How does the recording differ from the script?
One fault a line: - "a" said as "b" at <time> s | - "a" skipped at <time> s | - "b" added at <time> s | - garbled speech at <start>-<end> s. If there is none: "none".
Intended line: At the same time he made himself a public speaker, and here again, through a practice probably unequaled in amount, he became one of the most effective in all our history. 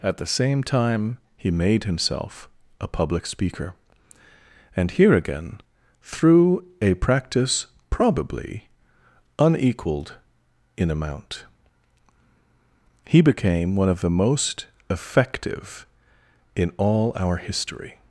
none